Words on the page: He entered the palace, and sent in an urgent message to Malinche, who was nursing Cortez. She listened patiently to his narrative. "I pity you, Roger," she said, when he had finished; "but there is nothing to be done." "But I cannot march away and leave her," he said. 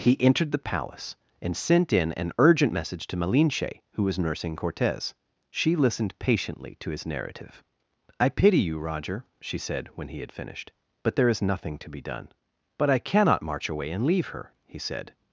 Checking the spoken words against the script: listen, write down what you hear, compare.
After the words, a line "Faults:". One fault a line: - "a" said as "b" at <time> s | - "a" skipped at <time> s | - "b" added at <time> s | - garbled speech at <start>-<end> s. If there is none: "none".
He entered the palace, and sent in an urgent message to Malinche, who was nursing Cortez. She listened patiently to his narrative. "I pity you, Roger," she said, when he had finished; "but there is nothing to be done." "But I cannot march away and leave her," he said.
Faults:
none